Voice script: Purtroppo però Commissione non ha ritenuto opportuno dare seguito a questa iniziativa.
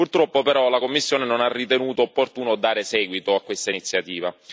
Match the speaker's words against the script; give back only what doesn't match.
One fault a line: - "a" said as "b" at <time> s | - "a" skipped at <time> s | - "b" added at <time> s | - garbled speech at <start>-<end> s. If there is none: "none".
- "la" added at 0.7 s